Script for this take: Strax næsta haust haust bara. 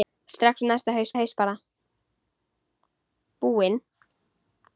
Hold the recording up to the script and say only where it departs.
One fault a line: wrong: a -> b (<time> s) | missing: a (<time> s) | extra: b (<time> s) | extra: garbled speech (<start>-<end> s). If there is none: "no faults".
no faults